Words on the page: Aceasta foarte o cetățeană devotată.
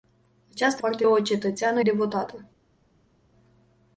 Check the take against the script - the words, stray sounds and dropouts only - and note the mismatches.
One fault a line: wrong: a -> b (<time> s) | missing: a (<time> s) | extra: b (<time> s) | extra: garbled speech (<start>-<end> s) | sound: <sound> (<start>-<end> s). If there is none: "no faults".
no faults